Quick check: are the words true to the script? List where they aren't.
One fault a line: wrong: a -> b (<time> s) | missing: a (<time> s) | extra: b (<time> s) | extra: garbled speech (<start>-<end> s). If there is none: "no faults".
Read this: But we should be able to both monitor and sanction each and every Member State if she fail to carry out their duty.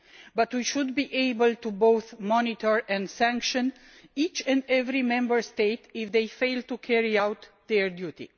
wrong: she -> they (6.1 s)